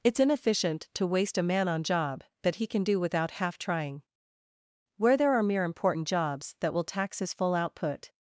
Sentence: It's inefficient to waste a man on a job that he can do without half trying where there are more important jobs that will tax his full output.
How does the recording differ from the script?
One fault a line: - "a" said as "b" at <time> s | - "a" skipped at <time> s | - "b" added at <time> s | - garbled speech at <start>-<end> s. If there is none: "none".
- "a" skipped at 1.8 s
- "more" said as "mere" at 5.4 s